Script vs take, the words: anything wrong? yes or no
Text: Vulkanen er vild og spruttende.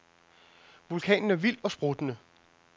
no